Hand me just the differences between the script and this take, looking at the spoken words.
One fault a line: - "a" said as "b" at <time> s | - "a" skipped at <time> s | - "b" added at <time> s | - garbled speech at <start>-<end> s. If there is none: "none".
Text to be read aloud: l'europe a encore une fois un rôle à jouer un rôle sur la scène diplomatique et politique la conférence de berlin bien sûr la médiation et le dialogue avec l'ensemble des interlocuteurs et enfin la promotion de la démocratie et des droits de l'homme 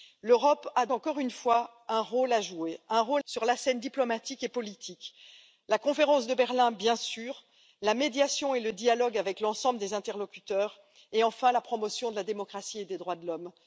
none